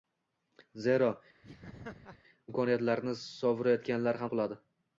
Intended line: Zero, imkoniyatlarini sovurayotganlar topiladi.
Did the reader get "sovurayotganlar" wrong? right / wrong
right